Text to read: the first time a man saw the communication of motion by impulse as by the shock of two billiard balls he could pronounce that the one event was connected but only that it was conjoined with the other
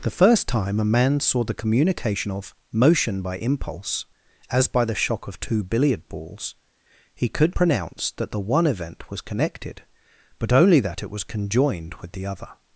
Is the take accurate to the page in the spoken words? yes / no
yes